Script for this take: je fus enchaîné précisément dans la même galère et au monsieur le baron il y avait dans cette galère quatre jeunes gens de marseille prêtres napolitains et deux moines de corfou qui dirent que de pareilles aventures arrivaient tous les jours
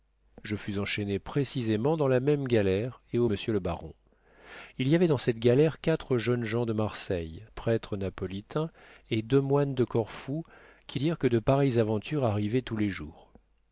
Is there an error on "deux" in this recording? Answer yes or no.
no